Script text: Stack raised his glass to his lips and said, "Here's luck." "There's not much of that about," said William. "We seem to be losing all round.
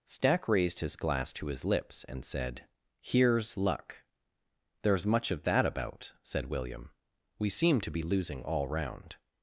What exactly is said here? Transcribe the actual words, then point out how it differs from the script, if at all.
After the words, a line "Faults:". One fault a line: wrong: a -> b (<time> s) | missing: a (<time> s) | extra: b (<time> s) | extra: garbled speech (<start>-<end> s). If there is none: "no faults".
Stack raised his glass to his lips and said, "Here's luck." "There's much of that about," said William. "We seem to be losing all round.
Faults:
missing: not (5.0 s)